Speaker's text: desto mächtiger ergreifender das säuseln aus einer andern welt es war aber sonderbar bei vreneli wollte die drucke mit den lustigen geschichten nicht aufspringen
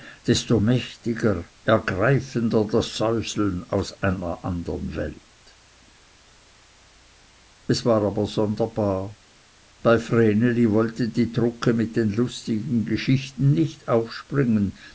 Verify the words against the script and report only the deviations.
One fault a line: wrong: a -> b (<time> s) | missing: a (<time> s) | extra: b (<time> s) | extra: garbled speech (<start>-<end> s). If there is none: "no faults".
no faults